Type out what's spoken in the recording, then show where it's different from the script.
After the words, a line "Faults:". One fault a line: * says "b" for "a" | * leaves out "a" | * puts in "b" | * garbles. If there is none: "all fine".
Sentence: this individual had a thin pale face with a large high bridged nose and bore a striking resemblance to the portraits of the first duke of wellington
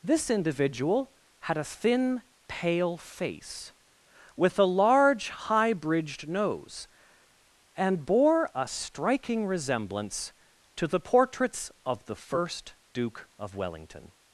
this individual had a thin pale face with a large high bridged nose and bore a striking resemblance to the portraits of the first duke of wellington
Faults:
all fine